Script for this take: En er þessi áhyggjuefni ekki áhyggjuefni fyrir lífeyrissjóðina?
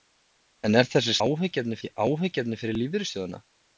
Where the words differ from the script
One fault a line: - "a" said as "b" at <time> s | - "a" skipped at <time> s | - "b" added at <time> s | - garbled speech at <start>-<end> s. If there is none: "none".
none